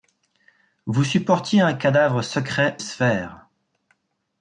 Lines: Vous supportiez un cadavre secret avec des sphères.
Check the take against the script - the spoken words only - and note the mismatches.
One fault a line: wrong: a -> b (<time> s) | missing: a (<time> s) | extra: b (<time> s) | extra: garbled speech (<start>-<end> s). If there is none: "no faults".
missing: avec des (2.8 s)